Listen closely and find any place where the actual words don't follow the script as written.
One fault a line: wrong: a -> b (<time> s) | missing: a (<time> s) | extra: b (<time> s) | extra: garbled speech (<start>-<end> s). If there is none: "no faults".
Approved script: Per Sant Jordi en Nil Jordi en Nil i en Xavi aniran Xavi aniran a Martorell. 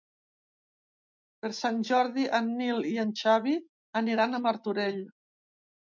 missing: Jordi en Nil (2.8 s)
missing: Xavi aniran (4.4 s)